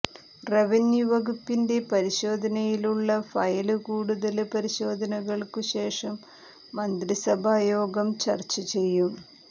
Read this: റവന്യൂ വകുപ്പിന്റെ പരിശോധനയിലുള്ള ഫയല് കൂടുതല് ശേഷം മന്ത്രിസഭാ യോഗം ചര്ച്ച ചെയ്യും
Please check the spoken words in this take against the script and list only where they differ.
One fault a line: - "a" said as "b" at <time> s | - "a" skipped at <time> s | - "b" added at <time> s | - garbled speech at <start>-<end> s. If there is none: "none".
- "പരിശോധനകള്ക്കു" added at 4.5 s